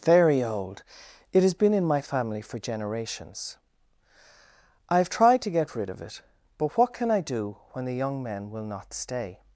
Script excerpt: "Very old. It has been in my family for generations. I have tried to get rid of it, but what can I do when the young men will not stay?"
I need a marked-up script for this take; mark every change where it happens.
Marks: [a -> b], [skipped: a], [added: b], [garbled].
"Very old. It has been in my family for generations. I have tried to get rid of it, but what can I do when the young men will not stay?"